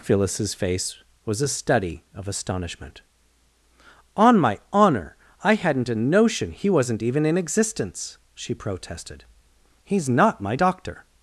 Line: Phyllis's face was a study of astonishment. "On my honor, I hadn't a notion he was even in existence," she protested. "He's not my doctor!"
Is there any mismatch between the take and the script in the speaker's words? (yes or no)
yes